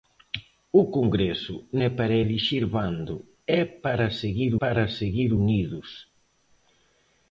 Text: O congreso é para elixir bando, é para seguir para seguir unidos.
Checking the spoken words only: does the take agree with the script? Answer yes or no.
yes